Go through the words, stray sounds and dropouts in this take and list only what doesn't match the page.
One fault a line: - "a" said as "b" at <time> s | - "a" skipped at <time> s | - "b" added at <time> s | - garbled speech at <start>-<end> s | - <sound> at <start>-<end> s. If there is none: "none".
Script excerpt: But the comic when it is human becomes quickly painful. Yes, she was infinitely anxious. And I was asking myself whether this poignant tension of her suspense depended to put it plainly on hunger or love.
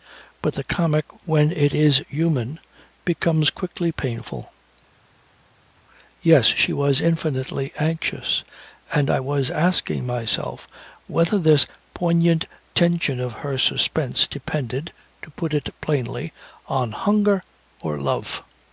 none